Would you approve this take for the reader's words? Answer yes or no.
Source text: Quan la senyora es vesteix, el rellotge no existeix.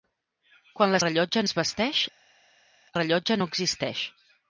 no